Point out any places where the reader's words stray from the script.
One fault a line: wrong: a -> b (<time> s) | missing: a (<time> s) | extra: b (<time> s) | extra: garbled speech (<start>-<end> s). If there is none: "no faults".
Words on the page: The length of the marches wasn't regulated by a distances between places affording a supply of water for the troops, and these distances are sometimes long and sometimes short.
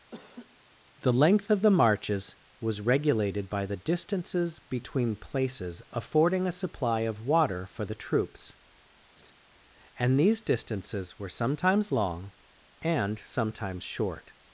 wrong: wasn't -> was (2.6 s)
wrong: a -> the (3.6 s)
wrong: are -> were (11.2 s)